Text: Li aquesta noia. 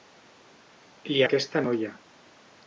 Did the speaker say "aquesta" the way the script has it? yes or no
yes